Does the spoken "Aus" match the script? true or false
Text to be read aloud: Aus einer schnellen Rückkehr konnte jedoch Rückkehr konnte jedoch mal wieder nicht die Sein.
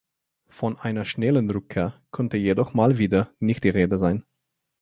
false